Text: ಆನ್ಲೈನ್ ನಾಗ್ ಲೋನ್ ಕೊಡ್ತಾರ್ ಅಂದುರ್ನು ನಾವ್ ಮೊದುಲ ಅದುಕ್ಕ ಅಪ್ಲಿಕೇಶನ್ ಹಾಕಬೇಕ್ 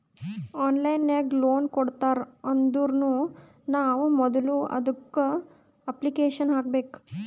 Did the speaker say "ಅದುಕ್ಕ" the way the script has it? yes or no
yes